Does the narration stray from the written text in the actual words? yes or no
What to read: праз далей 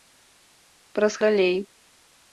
no